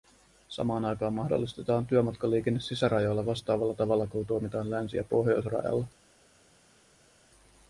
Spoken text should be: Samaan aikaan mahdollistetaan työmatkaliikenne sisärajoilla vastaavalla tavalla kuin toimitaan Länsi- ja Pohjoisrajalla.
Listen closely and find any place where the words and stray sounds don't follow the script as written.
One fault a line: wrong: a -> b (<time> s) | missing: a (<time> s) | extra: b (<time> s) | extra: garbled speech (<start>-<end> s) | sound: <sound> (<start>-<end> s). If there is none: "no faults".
no faults